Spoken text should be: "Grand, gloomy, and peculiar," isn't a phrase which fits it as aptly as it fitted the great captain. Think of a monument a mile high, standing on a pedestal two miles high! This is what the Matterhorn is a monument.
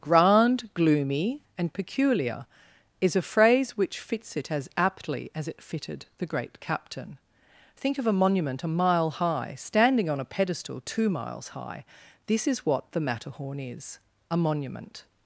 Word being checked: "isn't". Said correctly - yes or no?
no